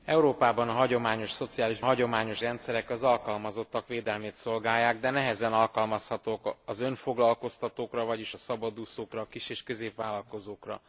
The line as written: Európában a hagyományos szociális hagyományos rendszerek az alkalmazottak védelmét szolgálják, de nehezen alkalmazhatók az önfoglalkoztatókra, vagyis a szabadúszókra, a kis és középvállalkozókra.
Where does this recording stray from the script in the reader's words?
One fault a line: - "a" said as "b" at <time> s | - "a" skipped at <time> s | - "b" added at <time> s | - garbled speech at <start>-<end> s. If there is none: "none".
none